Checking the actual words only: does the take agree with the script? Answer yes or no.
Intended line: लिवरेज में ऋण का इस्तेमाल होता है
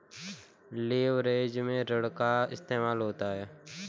yes